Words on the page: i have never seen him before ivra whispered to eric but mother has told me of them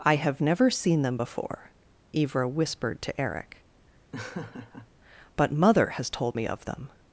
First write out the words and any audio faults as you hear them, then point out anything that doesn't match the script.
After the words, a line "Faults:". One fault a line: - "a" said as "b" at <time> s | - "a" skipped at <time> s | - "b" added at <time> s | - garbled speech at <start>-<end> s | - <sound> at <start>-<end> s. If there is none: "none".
i have never seen them before ivra whispered to eric but mother has told me of them
Faults:
- "him" said as "them" at 1.0 s
- laugh at 4.1-4.9 s